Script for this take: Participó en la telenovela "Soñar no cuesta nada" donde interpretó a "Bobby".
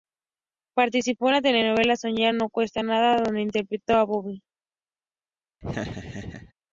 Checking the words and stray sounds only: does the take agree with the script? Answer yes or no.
no